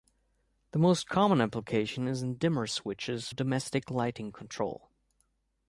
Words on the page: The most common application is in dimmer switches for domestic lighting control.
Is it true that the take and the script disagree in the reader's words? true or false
true